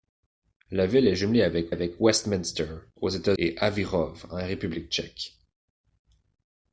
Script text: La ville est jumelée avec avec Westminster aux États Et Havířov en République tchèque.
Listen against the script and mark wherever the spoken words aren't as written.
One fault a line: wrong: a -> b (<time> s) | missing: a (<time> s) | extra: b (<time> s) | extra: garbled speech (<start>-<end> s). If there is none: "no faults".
no faults